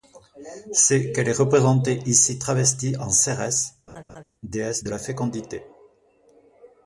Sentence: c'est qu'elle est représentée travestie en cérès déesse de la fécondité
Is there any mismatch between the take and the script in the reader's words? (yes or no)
yes